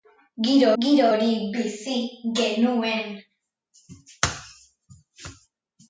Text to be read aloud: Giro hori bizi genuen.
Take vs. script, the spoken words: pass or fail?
fail